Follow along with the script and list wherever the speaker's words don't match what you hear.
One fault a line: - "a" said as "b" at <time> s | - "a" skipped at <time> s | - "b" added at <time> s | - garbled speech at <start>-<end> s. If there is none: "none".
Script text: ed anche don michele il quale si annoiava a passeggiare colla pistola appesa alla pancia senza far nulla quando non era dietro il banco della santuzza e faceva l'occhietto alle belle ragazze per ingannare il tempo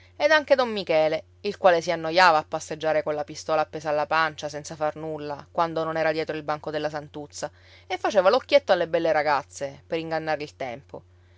none